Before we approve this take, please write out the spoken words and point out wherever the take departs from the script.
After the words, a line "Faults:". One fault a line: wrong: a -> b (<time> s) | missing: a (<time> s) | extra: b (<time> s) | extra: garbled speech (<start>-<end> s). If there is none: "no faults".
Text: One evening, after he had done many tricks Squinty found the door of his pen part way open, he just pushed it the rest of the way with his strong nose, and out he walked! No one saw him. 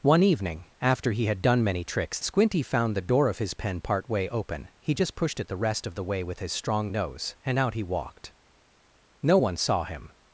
One evening, after he had done many tricks Squinty found the door of his pen part way open, he just pushed it the rest of the way with his strong nose, and out he walked! No one saw him.
Faults:
no faults